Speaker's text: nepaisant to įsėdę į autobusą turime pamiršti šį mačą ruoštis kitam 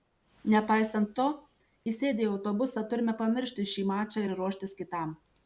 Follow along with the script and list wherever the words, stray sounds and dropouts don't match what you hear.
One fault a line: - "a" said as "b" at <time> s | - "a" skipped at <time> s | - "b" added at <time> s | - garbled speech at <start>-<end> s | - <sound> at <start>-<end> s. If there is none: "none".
- "ir" added at 4.3 s